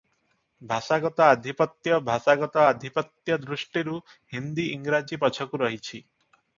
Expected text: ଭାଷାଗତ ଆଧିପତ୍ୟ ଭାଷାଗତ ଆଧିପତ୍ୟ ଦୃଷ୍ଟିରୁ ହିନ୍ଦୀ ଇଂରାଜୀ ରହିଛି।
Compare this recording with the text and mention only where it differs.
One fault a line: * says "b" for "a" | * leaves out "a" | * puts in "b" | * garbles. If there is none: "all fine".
* puts in "ପଛକୁ"